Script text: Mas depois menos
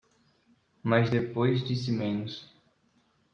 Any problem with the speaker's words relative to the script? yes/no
yes